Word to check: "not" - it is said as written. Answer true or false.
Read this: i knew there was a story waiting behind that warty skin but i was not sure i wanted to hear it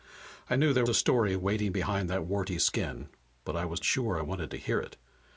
false